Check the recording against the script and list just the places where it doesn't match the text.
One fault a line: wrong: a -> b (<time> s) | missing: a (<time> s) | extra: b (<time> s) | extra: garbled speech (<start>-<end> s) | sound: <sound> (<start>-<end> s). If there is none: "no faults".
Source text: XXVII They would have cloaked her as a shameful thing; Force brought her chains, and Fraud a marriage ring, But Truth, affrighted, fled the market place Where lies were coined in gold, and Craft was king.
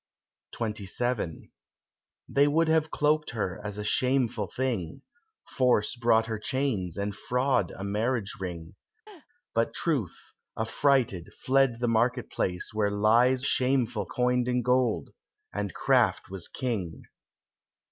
sound: laugh (9.1-9.3 s)
wrong: were -> shameful (13.4 s)